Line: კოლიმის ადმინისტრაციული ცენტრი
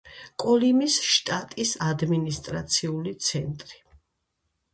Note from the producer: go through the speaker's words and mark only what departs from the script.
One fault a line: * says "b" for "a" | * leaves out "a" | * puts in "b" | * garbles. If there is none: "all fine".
* puts in "შტატის"